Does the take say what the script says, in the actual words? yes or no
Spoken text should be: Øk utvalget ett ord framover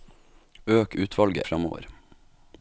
no